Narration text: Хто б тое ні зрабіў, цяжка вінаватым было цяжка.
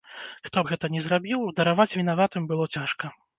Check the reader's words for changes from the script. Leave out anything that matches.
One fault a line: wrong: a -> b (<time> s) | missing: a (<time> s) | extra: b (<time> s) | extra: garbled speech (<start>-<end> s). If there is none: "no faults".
wrong: тое -> гэта (0.7 s)
wrong: цяжка -> дараваць (1.6 s)